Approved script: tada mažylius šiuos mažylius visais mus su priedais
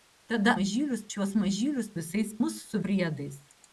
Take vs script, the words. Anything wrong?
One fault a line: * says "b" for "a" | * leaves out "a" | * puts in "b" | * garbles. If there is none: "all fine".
all fine